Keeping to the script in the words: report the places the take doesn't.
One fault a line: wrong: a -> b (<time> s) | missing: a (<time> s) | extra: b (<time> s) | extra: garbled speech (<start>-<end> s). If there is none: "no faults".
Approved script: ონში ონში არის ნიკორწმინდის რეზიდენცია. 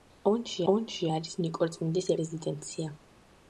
no faults